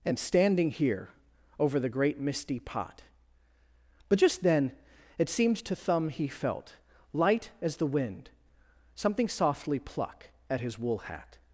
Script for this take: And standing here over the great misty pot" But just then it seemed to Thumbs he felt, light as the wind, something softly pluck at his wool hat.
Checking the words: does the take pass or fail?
fail